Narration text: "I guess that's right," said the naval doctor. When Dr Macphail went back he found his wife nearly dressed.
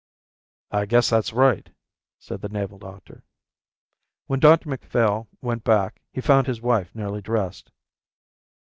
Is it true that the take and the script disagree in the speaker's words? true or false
false